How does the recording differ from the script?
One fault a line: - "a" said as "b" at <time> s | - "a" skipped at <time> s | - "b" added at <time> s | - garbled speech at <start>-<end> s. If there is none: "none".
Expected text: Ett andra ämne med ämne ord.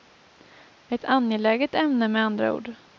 - "andra" said as "angeläget" at 1.1 s
- "ämne" said as "andra" at 2.2 s